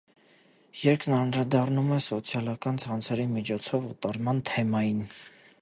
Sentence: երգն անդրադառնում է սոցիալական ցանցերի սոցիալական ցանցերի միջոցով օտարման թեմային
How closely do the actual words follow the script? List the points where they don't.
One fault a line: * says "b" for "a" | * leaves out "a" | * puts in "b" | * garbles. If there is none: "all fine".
* leaves out "սոցիալական ցանցերի"